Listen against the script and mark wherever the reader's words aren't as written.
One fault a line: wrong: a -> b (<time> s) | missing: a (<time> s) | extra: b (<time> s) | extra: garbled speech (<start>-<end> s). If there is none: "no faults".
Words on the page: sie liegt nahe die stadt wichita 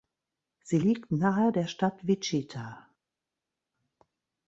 wrong: die -> der (1.5 s)